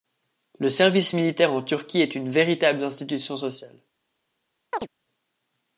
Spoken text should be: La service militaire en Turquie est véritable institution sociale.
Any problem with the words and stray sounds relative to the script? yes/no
yes